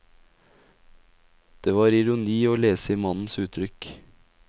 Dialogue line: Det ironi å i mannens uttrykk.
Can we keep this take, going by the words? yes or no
no